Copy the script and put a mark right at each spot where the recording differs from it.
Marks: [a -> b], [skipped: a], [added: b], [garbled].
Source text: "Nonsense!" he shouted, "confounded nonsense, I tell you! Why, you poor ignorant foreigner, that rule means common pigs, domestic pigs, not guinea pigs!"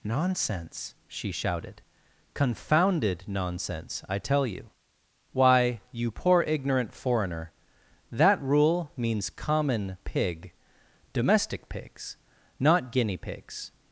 "Nonsense!" [he -> she] shouted, "confounded nonsense, I tell you! Why, you poor ignorant foreigner, that rule means common [pigs, -> pig] domestic pigs, not guinea pigs!"